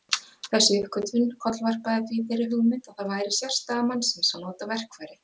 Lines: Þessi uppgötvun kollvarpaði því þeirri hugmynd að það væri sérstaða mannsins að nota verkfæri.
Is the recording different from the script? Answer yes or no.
no